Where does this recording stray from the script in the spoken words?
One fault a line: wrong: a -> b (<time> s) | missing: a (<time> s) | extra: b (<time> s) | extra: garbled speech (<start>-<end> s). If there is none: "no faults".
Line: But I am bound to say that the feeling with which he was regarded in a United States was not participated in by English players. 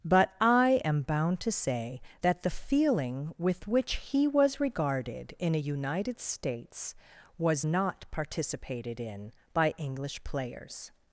no faults